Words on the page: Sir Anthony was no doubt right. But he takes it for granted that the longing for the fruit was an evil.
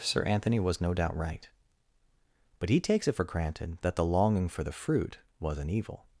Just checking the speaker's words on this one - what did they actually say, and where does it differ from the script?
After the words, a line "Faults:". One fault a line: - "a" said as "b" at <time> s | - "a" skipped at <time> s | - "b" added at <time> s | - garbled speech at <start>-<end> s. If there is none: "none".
Sir Anthony was no doubt right. But he takes it for granted that the longing for the fruit was an evil.
Faults:
none